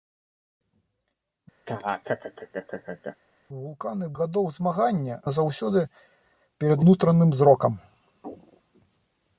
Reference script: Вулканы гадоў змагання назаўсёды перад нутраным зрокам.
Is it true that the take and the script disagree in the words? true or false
false